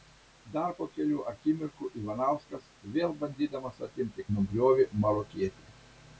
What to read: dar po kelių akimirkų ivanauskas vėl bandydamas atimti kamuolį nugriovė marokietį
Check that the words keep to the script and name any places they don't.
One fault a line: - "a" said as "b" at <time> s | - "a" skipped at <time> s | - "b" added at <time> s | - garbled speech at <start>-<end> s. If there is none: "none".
- "kamuolį" skipped at 4.2 s